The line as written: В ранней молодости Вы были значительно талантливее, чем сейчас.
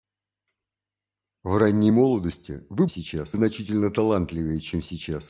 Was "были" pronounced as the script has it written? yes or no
no